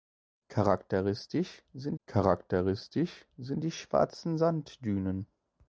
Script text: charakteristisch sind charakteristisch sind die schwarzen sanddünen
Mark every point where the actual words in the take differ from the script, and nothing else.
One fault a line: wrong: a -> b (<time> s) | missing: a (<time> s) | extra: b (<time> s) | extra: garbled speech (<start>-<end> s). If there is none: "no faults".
no faults